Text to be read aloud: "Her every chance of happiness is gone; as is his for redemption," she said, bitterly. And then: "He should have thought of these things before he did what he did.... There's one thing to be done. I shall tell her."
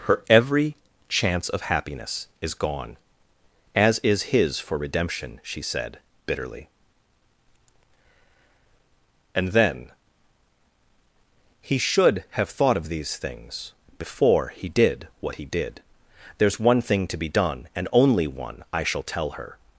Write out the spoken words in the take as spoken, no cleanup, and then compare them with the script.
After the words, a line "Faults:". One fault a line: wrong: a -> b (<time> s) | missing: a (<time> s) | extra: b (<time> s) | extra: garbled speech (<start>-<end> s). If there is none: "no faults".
"Her every chance of happiness is gone; as is his for redemption," she said, bitterly. And then: "He should have thought of these things before he did what he did.... There's one thing to be done, and only one. I shall tell her."
Faults:
extra: and only one (17.8 s)